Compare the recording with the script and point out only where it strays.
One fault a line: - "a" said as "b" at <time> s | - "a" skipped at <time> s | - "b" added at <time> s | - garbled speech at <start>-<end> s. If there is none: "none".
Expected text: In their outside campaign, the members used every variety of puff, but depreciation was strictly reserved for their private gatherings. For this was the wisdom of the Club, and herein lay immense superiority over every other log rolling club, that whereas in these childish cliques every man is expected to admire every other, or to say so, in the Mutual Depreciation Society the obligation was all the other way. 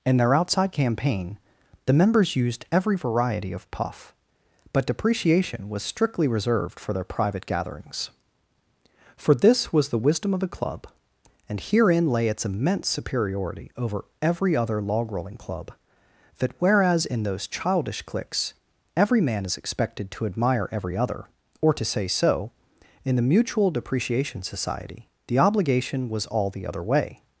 - "its" added at 12.3 s
- "these" said as "those" at 17.2 s